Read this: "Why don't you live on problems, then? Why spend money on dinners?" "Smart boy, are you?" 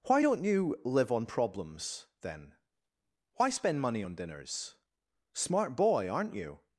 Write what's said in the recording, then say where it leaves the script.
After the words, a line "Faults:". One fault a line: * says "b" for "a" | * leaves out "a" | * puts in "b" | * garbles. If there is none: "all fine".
"Why don't you live on problems, then? Why spend money on dinners?" "Smart boy, aren't you?"
Faults:
* says "aren't" for "are"